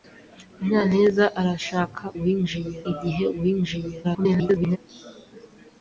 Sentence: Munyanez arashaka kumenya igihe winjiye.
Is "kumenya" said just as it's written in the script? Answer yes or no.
no